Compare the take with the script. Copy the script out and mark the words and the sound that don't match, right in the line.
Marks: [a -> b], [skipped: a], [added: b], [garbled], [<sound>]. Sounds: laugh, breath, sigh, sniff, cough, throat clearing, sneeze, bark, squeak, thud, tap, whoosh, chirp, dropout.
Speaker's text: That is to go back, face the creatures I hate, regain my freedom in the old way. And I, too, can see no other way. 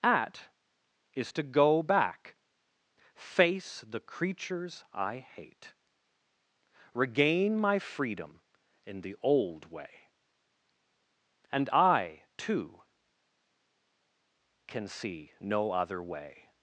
[That -> At] is to go back, face the creatures I hate, regain my freedom in the old way. And I, too, can see no other way.